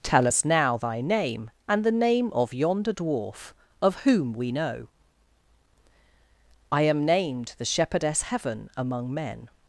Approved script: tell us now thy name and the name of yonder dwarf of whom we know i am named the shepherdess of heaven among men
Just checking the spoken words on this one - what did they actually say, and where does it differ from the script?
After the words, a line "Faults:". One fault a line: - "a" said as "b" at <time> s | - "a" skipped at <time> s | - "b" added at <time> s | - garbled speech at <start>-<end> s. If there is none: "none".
tell us now thy name and the name of yonder dwarf of whom we know i am named the shepherdess heaven among men
Faults:
- "of" skipped at 8.2 s